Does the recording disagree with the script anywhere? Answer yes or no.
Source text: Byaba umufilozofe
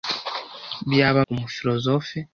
no